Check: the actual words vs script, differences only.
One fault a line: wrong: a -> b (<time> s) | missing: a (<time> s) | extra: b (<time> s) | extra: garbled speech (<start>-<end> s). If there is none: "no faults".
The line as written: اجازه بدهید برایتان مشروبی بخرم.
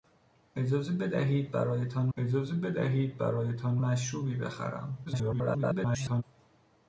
extra: اجازه بدهید برایتان (2.2 s)
extra: garbled speech (5.1-6.2 s)